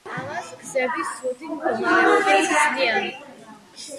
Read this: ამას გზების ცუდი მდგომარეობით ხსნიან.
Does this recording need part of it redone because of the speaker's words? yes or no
no